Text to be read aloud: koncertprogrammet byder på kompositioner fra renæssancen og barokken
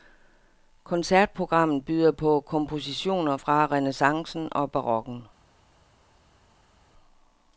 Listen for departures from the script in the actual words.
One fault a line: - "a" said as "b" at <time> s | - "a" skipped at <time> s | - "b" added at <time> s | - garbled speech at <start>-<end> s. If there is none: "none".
none